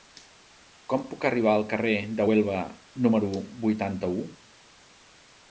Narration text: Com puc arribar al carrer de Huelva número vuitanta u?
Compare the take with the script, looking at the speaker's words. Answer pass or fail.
pass